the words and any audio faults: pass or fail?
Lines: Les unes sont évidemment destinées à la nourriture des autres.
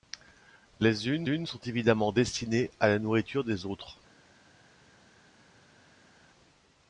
fail